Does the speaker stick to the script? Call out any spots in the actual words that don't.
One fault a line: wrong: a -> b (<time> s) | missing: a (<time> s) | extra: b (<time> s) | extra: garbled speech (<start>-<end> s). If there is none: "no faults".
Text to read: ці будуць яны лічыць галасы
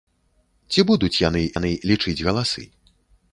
extra: яны (1.6 s)